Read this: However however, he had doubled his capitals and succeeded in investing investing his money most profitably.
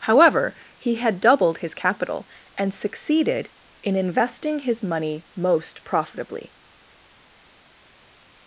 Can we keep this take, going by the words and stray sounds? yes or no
no